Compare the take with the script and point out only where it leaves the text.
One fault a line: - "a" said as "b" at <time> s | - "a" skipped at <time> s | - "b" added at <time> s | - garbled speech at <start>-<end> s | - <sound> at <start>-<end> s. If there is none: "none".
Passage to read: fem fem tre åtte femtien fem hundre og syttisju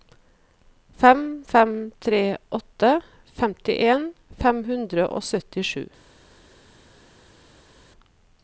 none